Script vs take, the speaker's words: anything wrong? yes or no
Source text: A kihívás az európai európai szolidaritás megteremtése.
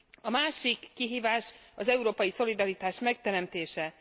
yes